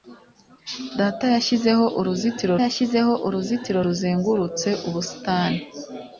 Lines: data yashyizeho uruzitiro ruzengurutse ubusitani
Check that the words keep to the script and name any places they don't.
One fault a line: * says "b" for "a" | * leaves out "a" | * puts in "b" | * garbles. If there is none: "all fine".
* puts in "yashyizeho uruzitiro"